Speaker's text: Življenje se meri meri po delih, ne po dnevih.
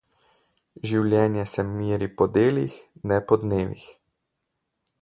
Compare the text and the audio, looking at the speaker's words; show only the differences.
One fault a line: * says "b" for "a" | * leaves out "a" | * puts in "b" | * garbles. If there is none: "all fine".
* leaves out "meri"